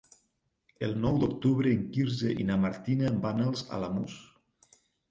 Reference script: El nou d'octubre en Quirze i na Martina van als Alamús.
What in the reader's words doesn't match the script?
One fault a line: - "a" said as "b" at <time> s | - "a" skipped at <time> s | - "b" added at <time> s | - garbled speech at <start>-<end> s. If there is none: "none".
none